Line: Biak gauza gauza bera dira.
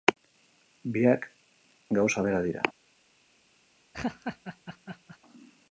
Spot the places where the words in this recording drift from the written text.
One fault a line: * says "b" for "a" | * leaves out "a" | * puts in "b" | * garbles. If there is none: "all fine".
* leaves out "gauza"